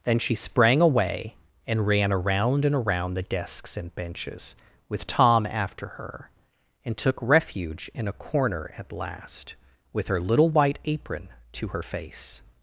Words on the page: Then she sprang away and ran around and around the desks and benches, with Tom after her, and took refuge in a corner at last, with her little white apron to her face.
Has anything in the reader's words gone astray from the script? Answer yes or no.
no